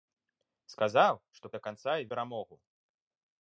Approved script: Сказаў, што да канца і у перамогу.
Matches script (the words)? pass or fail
pass